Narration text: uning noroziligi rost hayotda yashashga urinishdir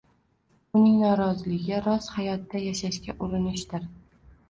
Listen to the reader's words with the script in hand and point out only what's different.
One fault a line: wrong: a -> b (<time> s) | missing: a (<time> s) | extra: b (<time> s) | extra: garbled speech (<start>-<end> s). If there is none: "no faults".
no faults